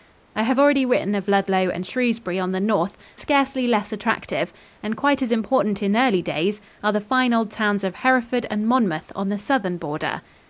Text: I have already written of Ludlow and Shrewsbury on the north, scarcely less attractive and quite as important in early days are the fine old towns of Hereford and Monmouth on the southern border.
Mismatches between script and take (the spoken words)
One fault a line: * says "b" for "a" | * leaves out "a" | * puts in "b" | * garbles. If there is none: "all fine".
all fine